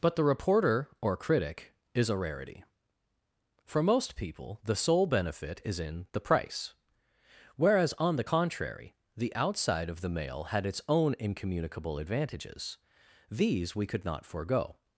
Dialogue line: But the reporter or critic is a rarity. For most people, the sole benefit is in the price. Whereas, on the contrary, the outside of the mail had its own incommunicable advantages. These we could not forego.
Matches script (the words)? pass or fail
pass